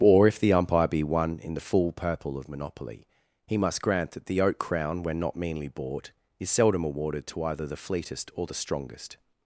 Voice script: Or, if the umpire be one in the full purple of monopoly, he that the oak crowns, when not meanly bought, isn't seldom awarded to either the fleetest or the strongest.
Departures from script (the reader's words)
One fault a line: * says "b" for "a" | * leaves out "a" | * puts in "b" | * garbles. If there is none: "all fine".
* puts in "must grant"
* says "crown" for "crowns"
* says "is" for "isn't"